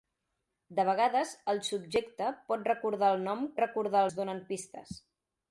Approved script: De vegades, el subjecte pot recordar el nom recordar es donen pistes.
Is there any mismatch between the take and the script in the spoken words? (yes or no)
no